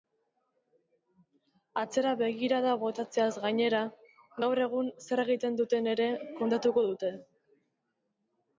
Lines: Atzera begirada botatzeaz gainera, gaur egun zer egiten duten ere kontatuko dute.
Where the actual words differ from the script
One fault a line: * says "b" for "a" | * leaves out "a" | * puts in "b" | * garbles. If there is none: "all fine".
all fine